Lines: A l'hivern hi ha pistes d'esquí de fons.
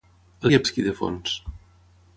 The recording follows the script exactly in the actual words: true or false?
false